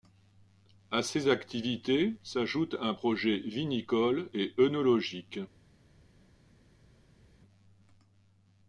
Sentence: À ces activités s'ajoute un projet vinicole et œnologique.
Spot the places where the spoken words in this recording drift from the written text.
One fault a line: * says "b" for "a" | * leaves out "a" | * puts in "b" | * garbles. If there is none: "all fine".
all fine